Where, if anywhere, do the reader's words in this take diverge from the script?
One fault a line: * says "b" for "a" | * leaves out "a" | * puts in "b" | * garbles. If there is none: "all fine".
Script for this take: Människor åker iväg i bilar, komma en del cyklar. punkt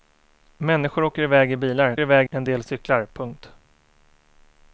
* says "iväg" for "komma"